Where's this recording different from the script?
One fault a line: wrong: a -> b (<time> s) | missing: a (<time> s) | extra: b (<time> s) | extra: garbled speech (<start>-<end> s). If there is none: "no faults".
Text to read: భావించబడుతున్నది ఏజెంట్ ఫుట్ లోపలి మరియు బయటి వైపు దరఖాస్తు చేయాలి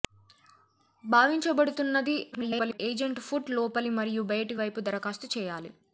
extra: garbled speech (2.3-2.8 s)